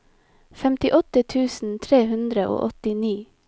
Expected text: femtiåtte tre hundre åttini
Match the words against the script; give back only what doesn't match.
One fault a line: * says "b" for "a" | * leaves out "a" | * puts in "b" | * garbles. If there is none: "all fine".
* puts in "tusen"
* puts in "og"